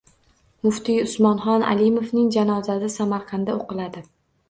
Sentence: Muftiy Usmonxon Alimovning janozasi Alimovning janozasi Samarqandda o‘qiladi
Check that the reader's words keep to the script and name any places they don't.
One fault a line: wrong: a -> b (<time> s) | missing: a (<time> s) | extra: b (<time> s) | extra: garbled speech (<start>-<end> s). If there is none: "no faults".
missing: Alimovning janozasi (2.9 s)